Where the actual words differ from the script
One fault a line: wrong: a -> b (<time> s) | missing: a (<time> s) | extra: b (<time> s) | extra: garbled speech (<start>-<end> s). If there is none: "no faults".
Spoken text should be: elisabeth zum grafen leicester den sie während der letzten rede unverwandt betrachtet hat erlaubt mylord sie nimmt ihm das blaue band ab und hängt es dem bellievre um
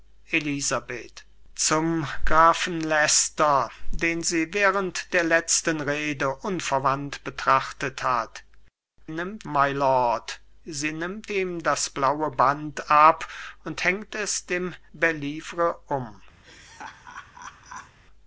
wrong: erlaubt -> nimmt (9.1 s)